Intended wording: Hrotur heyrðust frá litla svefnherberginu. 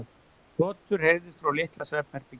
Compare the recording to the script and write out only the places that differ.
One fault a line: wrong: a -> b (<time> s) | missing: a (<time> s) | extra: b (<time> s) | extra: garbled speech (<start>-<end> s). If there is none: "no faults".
no faults